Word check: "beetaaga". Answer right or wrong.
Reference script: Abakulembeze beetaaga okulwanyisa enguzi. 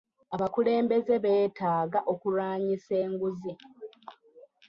right